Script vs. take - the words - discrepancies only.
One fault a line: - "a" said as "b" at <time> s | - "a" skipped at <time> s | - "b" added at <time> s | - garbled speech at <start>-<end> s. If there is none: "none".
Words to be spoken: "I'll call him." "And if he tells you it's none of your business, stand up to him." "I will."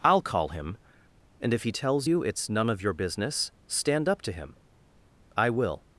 none